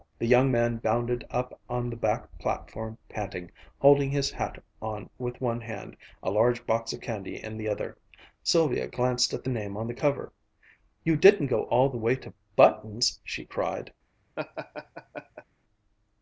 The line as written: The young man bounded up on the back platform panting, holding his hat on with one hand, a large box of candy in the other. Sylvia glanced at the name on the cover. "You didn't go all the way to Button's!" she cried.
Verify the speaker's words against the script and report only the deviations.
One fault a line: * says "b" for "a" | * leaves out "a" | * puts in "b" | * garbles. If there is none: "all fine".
all fine